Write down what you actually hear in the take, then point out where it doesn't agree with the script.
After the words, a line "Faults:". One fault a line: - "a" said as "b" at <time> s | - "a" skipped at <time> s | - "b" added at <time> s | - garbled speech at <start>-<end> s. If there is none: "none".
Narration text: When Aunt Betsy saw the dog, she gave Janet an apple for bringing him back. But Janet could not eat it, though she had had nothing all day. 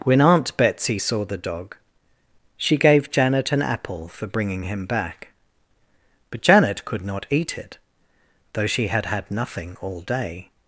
When Aunt Betsy saw the dog, she gave Janet an apple for bringing him back. But Janet could not eat it, though she had had nothing all day.
Faults:
none